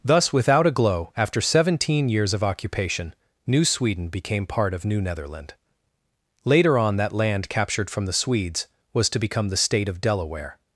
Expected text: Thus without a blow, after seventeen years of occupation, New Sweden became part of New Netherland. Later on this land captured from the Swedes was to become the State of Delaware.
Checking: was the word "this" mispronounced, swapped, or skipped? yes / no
yes